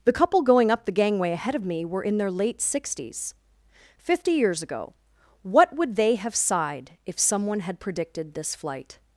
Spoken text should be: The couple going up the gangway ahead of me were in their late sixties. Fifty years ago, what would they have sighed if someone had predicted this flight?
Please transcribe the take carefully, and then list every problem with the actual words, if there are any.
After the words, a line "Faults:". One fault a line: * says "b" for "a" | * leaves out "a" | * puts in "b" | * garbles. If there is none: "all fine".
The couple going up the gangway ahead of me were in their late sixties. Fifty years ago, what would they have sighed if someone had predicted this flight?
Faults:
all fine